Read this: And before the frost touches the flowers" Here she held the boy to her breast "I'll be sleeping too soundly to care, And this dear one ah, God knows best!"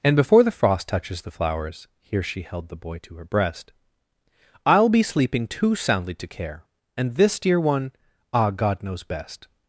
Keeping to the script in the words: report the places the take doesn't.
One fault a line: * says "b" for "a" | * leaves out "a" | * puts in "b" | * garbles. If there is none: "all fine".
all fine